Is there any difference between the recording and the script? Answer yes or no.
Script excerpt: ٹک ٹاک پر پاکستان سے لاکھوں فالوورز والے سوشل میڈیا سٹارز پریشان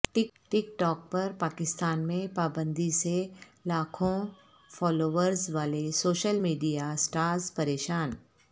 yes